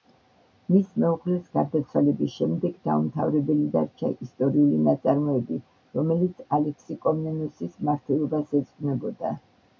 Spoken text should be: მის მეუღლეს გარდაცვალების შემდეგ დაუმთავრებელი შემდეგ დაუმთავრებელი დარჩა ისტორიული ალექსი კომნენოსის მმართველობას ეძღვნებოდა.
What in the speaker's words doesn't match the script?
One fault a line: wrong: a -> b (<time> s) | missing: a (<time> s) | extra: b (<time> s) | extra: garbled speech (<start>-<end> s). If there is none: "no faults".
wrong: შემდეგ დაუმთავრებელი დარჩა ისტორიული -> დარჩა ისტორიული ნაწარმოები რომელიც (3.7 s)